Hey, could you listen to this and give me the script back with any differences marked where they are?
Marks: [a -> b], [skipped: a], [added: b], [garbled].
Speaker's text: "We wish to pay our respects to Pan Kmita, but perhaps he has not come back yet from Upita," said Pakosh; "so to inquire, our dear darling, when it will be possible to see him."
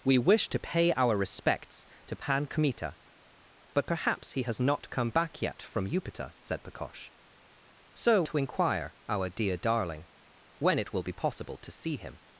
"We wish to pay our respects to Pan Kmita, but perhaps he has not come back yet from Upita," said Pakosh; "so to inquire, our dear darling, when it will be possible to see him."